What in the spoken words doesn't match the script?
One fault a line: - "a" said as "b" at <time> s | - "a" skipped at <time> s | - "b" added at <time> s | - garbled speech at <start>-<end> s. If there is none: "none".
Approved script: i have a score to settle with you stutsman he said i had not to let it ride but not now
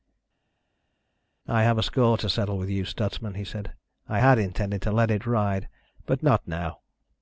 - "not" said as "intended" at 4.4 s